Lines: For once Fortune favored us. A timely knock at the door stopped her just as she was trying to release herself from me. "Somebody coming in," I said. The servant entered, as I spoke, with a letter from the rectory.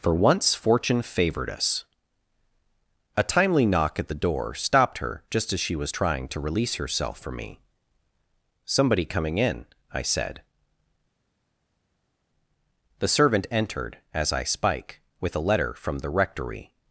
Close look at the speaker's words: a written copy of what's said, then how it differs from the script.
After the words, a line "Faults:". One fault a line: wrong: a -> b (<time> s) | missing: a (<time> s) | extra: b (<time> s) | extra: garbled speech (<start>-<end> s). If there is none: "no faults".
For once Fortune favored us. A timely knock at the door stopped her just as she was trying to release herself from me. "Somebody coming in," I said. The servant entered, as I spike, with a letter from the rectory.
Faults:
wrong: spoke -> spike (14.4 s)